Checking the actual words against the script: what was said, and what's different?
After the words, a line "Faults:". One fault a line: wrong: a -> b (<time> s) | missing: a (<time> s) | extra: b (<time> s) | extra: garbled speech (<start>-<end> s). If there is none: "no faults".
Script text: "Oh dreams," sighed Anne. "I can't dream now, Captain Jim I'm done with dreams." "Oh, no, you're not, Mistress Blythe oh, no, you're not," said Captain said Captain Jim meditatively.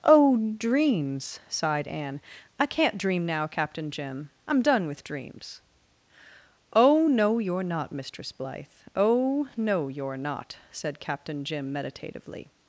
"Oh dreams," sighed Anne. "I can't dream now, Captain Jim I'm done with dreams." "Oh, no, you're not, Mistress Blythe oh, no, you're not," said Captain Jim meditatively.
Faults:
missing: said Captain (11.4 s)